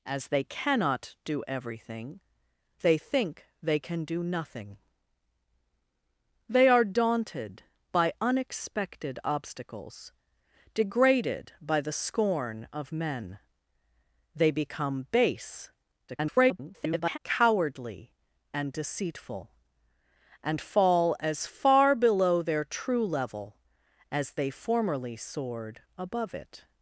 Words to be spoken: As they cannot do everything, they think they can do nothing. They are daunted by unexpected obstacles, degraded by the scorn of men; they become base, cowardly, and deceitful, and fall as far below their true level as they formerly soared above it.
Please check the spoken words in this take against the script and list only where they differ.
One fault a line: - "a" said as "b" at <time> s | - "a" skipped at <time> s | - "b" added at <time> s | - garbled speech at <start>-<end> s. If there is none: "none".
- garbled speech at 16.1-17.2 s